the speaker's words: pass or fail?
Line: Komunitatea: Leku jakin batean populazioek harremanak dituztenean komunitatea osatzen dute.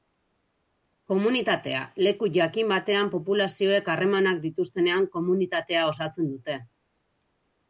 pass